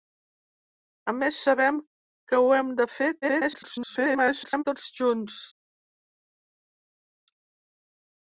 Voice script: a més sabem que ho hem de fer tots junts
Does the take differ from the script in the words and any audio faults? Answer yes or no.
yes